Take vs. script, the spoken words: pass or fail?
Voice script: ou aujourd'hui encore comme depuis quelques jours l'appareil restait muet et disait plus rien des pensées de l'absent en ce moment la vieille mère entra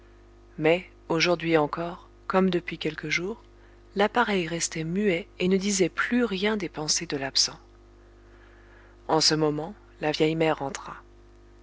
fail